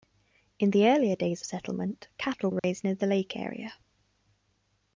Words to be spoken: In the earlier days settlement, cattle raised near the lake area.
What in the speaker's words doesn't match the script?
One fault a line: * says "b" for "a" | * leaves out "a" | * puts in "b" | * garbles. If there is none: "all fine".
all fine